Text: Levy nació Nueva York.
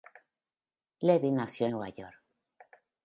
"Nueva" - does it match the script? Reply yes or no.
yes